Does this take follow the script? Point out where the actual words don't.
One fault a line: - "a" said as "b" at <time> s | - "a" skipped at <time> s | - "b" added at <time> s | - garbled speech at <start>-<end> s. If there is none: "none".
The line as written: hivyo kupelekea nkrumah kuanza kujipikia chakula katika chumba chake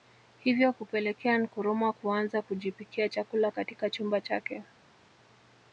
none